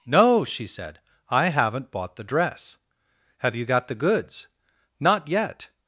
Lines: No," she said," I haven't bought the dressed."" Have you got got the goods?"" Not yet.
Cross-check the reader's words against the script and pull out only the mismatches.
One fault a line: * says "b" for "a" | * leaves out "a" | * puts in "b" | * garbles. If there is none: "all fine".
* says "dress" for "dressed"
* leaves out "got"